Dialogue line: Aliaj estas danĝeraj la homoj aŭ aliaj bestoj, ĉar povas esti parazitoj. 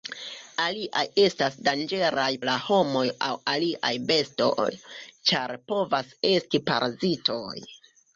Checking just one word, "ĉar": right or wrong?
right